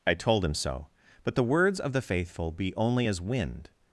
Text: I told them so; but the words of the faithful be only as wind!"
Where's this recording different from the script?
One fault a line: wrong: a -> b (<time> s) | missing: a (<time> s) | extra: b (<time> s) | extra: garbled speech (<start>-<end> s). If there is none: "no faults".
wrong: them -> him (0.4 s)